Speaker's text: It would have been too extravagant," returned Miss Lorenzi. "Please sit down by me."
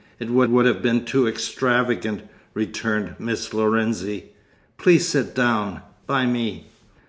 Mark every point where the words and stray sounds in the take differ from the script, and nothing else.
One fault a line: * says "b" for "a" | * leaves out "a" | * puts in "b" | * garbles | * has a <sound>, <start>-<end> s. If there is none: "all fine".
* puts in "would"